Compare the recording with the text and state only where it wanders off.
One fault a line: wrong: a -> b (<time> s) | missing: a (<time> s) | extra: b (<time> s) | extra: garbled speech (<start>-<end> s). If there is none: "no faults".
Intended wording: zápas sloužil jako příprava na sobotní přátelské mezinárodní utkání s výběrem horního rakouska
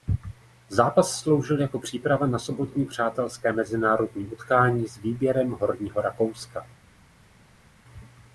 no faults